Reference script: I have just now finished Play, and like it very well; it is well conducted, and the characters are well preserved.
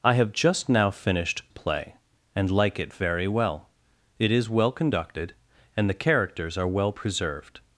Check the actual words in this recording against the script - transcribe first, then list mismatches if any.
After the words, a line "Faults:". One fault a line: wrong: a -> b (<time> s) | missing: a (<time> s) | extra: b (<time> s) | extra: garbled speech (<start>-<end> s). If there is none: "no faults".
I have just now finished Play, and like it very well; it is well conducted, and the characters are well preserved.
Faults:
no faults